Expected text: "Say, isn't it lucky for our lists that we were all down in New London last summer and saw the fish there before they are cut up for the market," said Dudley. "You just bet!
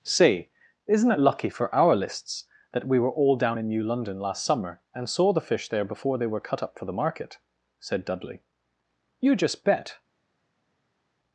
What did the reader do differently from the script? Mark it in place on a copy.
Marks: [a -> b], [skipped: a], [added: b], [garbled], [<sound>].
"Say, isn't it lucky for our lists that we were all down in New London last summer and saw the fish there before they [are -> were] cut up for the market," said Dudley. "You just bet!